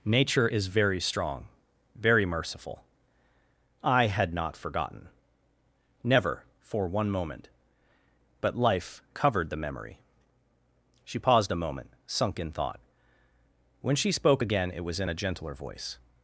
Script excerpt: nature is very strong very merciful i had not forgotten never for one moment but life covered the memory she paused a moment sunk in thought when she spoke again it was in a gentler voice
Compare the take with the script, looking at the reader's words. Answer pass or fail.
pass